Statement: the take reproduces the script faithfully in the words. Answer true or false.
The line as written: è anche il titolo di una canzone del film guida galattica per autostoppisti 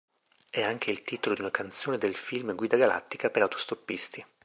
true